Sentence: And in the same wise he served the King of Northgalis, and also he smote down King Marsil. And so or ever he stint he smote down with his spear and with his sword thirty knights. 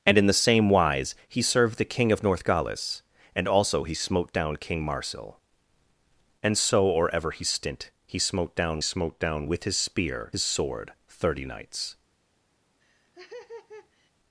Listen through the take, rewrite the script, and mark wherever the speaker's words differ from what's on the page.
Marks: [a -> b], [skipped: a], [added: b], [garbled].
And in the same wise he served the King of Northgalis, and also he smote down King Marsil. And so or ever he stint he smote down [added: smote down] with his spear [skipped: and with] his sword thirty knights.